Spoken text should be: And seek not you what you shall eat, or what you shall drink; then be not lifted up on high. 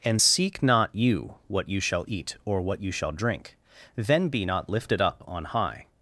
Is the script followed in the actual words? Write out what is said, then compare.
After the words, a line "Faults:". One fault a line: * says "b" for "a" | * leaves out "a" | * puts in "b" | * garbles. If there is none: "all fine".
And seek not you what you shall eat, or what you shall drink; then be not lifted up on high.
Faults:
all fine